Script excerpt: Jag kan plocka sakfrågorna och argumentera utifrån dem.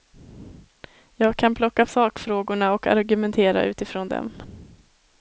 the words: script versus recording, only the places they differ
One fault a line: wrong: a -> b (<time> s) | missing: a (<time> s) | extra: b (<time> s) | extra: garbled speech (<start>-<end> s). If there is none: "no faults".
no faults